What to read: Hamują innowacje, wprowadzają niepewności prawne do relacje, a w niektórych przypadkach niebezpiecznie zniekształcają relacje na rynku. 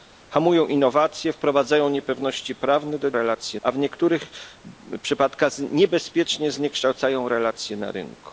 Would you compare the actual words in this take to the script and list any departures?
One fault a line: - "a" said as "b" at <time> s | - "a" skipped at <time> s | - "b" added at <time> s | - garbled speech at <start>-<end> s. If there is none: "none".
none